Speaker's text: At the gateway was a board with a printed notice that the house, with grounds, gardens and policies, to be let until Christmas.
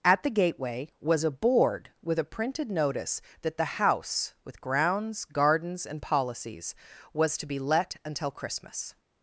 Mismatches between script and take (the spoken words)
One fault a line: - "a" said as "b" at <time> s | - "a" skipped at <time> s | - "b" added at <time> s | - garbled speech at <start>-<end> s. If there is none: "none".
- "was" added at 7.1 s